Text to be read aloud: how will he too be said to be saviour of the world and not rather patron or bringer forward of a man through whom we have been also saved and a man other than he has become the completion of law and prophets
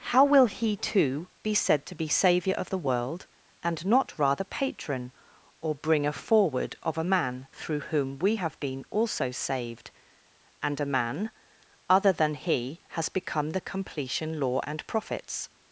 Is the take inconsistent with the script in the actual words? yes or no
yes